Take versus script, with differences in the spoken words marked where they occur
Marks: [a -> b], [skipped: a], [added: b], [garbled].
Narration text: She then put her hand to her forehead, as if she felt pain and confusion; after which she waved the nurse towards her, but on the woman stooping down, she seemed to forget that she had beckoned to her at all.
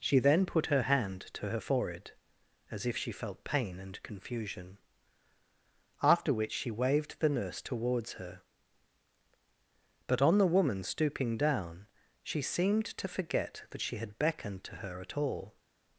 She then put her hand to her forehead, as if she felt pain and confusion; after which she waved the nurse towards her, but on the woman stooping down, she seemed to forget that she had beckoned to her at all.